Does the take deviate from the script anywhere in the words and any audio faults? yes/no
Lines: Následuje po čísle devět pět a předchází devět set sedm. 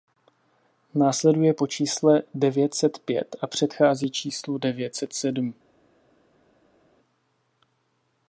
yes